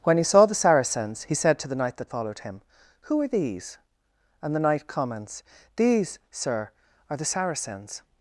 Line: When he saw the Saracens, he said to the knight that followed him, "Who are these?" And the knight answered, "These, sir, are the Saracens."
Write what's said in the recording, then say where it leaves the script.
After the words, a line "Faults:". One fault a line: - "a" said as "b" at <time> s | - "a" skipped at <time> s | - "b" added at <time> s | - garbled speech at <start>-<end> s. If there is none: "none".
When he saw the Saracens, he said to the knight that followed him, "Who are these?" And the knight comments, "These, sir, are the Saracens."
Faults:
- "answered" said as "comments" at 4.9 s